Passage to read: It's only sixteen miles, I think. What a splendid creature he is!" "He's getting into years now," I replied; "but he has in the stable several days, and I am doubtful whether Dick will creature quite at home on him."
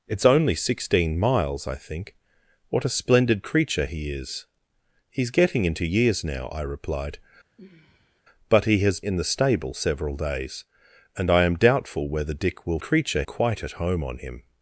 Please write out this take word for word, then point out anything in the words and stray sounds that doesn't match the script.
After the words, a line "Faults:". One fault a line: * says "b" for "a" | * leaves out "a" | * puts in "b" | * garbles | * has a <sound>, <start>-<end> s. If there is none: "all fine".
It's only sixteen miles, I think. What a splendid creature he is!" "He's getting into years now," I replied; "but he has in the stable several days, and I am doubtful whether Dick will creature quite at home on him."
Faults:
* has a sigh, 7.6-8.2 s